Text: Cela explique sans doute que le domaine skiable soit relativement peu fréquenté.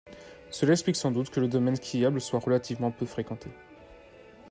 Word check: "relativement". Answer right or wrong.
right